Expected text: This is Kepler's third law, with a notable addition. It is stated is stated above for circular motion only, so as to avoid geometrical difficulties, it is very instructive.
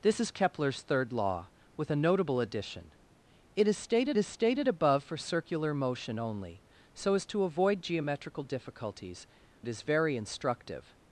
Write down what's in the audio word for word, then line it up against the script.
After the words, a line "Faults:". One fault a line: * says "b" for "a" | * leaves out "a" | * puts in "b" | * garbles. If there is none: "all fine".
This is Kepler's third law, with a notable addition. It is stated is stated above for circular motion only, so as to avoid geometrical difficulties, it is very instructive.
Faults:
all fine